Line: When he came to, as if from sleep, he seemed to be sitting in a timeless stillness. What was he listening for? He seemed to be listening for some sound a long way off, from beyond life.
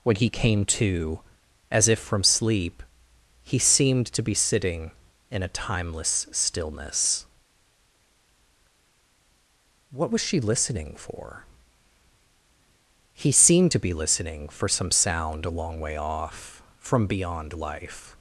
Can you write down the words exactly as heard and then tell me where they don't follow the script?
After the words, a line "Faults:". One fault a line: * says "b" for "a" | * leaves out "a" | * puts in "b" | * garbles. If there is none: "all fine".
When he came to, as if from sleep, he seemed to be sitting in a timeless stillness. What was she listening for? He seemed to be listening for some sound a long way off, from beyond life.
Faults:
* says "she" for "he"